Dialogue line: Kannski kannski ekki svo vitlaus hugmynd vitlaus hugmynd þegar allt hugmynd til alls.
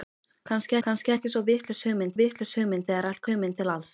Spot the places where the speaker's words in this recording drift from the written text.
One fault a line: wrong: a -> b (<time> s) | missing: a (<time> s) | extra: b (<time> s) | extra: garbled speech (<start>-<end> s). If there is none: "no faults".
no faults